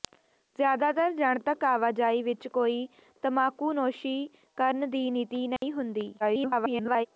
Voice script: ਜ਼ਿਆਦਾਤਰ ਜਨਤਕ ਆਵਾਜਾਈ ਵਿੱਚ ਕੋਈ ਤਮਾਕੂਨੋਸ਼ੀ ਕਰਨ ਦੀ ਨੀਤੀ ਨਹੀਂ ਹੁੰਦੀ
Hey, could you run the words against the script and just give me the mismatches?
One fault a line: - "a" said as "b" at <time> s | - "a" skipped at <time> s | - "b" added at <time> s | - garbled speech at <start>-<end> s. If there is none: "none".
- garbled speech at 6.2-7.1 s